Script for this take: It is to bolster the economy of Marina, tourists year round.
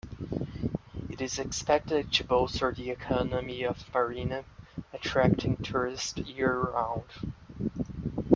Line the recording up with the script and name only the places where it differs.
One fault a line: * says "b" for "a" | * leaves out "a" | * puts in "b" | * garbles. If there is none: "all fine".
* puts in "expected"
* puts in "attracting"